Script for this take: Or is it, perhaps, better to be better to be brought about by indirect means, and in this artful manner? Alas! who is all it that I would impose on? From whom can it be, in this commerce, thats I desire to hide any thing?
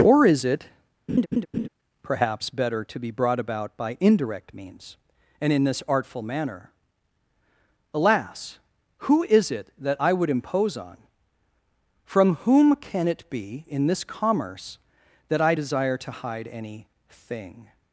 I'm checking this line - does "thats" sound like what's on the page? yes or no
no